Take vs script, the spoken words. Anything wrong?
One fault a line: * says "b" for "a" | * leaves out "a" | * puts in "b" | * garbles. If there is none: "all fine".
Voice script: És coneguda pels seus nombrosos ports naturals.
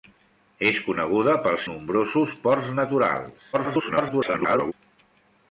* leaves out "seus"
* garbles